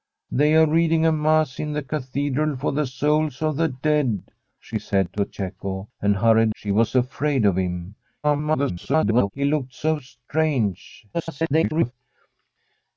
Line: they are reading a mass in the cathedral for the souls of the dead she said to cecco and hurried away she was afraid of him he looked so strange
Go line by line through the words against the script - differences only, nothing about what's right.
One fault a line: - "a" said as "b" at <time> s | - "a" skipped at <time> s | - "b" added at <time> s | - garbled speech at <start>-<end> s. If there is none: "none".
- "away" skipped at 6.5 s
- garbled speech at 8.2-9.3 s
- garbled speech at 11.1-11.9 s